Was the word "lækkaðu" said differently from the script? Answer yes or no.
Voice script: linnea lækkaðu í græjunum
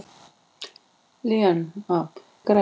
yes